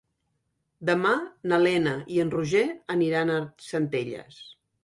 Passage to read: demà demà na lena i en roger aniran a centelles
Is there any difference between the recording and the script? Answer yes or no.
yes